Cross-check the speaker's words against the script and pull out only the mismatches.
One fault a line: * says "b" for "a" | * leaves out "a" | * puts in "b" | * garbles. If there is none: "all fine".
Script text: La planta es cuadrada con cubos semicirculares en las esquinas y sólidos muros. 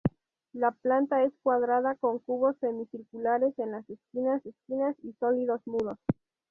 * puts in "esquinas"